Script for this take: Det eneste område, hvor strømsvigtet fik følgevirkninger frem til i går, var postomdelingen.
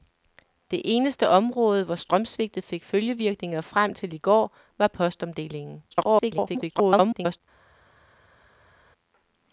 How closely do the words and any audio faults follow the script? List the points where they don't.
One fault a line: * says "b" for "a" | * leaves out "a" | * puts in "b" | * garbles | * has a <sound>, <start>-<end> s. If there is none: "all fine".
* garbles